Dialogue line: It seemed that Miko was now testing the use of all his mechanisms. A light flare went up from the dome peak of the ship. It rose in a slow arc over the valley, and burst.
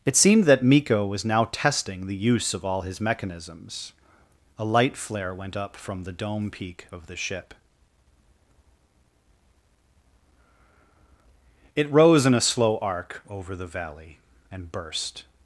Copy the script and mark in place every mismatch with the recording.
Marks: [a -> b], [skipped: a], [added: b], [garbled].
It seemed that Miko was now testing the use of all his mechanisms. A light flare went up from the dome peak of the ship. It rose in a slow arc over the valley, and burst.